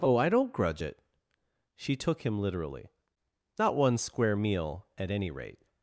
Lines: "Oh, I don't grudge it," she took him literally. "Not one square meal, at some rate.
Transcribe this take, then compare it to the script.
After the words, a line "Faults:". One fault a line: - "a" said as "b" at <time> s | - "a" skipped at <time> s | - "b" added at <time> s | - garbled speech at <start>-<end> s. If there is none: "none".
"Oh, I don't grudge it," she took him literally. "Not one square meal, at any rate.
Faults:
- "some" said as "any" at 5.1 s